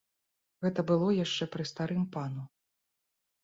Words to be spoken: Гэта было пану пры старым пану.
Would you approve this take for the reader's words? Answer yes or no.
no